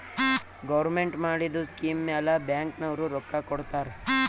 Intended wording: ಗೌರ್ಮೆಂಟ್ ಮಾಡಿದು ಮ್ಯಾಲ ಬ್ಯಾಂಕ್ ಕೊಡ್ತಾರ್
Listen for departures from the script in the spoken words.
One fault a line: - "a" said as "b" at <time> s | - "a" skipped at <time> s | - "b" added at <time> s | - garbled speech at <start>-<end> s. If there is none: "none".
- "ಸ್ಕೀಮ್" added at 1.7 s
- "ನವ್ರು ರೊಕ್ಕಾ" added at 2.8 s